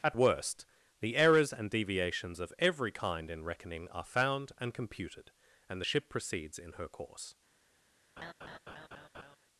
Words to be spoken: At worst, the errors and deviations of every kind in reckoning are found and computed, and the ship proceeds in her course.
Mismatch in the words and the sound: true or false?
true